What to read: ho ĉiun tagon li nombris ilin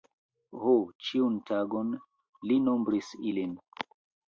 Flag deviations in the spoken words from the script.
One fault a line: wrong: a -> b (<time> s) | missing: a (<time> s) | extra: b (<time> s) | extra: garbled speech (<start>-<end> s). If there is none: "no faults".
no faults